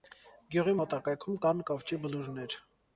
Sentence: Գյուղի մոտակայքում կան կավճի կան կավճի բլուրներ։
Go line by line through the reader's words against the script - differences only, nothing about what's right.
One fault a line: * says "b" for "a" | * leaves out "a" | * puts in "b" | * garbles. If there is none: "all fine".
* leaves out "կան կավճի"